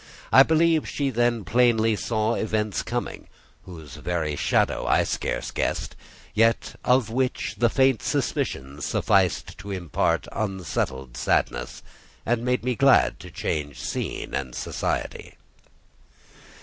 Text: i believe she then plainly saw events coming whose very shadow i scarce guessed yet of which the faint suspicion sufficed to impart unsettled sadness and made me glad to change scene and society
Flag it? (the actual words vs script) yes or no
no